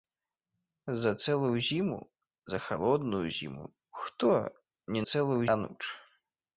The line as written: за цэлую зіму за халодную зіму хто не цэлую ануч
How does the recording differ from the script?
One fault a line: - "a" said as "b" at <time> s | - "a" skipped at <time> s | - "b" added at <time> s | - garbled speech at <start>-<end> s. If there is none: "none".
none